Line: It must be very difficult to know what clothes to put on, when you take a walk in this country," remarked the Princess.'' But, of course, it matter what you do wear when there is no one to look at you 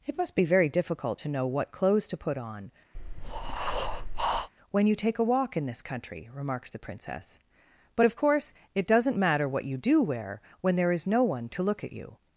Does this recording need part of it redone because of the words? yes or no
yes